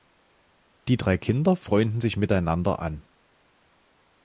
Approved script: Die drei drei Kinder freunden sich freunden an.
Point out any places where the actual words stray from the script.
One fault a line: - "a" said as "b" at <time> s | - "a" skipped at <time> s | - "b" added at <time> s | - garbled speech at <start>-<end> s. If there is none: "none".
- "drei" skipped at 1.2 s
- "freunden" said as "miteinander" at 2.1 s